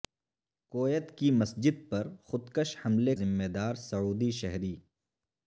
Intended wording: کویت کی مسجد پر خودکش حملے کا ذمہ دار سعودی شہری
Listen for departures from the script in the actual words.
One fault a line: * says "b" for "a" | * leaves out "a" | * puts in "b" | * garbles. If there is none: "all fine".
* leaves out "کا"